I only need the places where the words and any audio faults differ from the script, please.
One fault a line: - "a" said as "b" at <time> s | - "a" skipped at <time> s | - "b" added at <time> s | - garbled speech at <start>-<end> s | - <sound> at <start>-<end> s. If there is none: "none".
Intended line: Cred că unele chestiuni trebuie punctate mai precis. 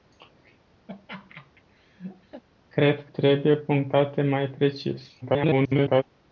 - laugh at 0.9-2.4 s
- "că unele chestiuni" skipped at 3.1 s
- garbled speech at 5.2-6.0 s